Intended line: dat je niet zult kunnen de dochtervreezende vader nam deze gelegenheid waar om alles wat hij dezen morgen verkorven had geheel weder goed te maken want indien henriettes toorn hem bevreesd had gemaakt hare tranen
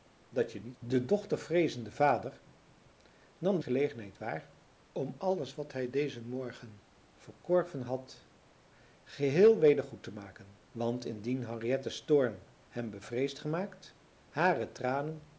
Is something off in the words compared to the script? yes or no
yes